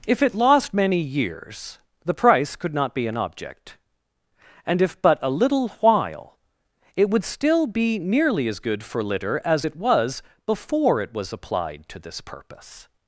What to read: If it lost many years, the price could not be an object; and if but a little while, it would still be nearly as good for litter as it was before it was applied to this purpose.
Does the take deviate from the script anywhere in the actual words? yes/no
no